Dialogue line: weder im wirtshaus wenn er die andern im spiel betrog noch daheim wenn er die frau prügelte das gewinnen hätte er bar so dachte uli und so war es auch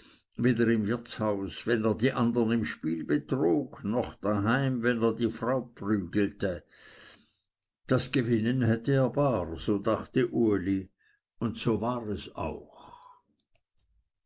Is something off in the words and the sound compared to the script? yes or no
no